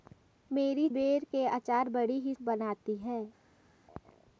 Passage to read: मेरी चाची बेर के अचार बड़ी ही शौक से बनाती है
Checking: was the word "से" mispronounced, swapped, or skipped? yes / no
yes